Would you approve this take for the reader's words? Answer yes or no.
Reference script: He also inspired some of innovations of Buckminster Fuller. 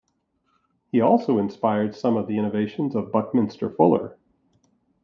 no